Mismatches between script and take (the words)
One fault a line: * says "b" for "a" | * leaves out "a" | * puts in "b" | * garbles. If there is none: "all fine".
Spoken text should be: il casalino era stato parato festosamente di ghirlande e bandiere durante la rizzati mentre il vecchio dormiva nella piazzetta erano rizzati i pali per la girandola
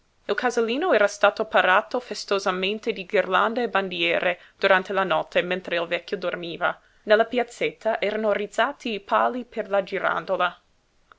* says "notte" for "rizzati"